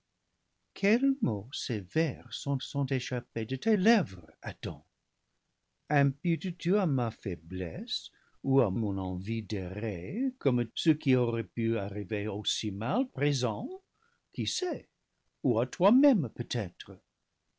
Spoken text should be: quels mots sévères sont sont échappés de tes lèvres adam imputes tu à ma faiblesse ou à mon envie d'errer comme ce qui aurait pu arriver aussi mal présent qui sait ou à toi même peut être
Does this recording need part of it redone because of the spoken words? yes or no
no